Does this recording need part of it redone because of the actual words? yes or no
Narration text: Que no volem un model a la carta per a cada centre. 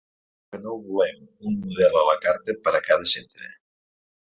no